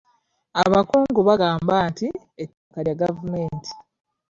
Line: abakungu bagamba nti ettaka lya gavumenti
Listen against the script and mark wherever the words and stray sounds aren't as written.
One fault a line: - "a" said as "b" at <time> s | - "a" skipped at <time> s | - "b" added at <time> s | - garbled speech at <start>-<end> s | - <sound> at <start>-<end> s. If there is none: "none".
- dropout at 2.6-2.7 s